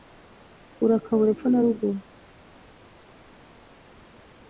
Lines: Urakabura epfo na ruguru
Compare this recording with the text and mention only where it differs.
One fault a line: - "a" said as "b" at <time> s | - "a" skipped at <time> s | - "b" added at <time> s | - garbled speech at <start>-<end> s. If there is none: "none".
none